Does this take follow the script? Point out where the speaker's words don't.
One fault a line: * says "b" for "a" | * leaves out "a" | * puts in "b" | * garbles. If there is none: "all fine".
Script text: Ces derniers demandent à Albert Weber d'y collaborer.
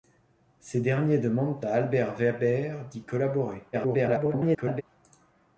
* garbles